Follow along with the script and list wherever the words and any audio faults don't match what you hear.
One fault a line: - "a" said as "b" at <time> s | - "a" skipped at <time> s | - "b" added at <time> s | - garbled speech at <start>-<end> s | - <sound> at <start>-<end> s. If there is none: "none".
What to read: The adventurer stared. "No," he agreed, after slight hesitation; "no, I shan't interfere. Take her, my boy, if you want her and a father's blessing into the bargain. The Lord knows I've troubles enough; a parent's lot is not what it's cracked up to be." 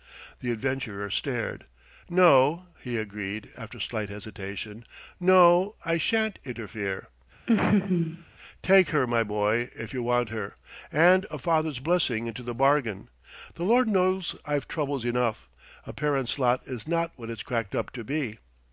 - laugh at 7.5-8.2 s